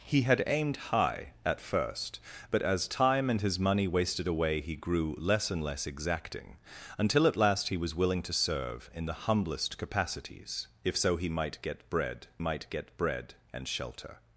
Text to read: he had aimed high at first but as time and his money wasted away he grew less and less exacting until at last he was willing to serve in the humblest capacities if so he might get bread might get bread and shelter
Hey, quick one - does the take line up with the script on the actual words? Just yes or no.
yes